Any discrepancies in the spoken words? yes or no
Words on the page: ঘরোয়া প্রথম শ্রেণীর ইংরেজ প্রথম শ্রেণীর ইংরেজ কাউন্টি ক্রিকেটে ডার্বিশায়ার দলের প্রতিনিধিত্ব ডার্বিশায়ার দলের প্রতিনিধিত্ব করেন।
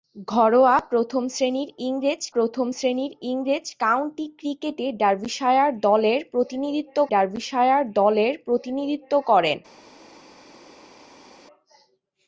no